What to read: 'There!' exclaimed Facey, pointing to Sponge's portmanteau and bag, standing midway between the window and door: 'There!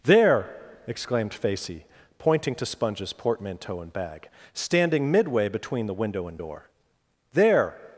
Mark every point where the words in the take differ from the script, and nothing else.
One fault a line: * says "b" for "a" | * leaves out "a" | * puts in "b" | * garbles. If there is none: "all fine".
all fine